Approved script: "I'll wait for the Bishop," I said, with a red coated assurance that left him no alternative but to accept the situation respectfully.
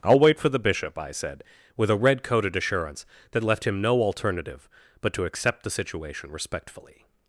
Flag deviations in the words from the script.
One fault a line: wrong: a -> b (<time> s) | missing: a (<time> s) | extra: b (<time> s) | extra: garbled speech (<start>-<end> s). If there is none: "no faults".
no faults